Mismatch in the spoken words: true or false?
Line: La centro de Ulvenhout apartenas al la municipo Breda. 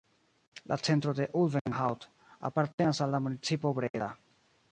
false